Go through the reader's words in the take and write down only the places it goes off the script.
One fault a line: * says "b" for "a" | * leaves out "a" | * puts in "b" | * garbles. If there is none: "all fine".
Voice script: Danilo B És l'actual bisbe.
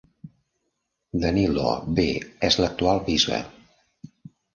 all fine